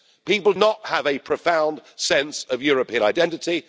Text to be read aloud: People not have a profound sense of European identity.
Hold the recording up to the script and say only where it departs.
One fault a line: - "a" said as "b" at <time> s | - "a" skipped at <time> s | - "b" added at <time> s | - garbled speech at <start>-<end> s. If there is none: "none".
none